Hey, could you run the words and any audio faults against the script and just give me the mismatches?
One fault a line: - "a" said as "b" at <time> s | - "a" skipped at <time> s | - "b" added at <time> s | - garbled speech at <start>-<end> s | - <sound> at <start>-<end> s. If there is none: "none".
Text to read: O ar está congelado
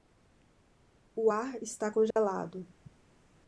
- dropout at 2.1-2.2 s